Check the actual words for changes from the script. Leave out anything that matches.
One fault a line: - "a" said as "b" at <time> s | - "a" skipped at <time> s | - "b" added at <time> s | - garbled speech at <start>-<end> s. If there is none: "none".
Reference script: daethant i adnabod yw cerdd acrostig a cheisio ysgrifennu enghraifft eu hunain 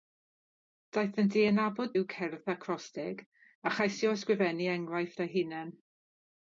none